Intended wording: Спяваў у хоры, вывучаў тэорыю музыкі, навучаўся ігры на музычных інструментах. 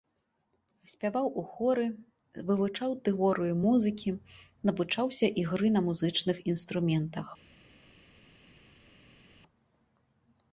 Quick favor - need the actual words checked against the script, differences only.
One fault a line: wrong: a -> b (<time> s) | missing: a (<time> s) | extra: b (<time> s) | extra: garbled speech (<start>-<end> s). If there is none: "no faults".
no faults